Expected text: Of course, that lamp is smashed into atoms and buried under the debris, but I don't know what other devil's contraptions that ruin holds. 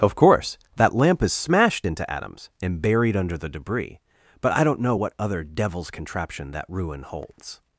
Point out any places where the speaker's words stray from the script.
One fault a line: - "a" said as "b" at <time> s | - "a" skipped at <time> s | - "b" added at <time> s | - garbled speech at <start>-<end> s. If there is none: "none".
- "contraptions" said as "contraption" at 5.9 s